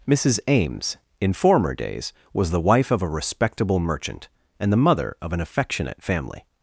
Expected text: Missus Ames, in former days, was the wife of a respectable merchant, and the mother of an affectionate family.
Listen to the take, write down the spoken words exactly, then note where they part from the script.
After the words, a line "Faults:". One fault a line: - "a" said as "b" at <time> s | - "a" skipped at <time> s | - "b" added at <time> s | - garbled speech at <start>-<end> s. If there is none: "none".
Missus Ames, in former days, was the wife of a respectable merchant, and the mother of an affectionate family.
Faults:
none